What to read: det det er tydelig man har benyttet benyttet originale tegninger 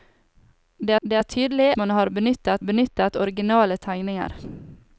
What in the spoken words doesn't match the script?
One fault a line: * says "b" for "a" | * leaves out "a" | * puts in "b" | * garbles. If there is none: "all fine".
all fine